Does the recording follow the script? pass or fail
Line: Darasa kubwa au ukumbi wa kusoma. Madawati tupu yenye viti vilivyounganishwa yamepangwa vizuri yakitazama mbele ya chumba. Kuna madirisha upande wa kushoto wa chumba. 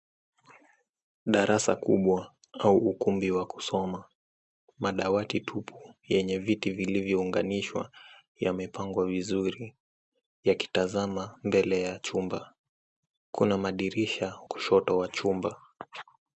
fail